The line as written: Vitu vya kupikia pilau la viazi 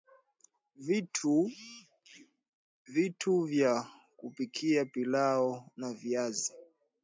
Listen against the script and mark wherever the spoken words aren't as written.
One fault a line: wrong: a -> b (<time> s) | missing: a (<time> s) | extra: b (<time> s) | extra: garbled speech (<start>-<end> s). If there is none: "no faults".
no faults